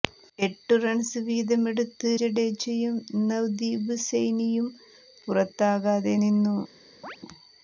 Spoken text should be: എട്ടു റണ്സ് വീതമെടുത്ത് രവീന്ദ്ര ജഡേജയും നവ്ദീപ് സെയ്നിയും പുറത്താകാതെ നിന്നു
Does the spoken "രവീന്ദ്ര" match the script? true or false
false